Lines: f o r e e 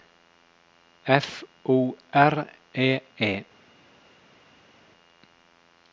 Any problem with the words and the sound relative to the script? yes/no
no